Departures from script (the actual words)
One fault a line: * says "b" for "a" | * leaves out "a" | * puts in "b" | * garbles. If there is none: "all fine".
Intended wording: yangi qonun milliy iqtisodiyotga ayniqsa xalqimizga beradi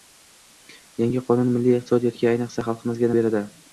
all fine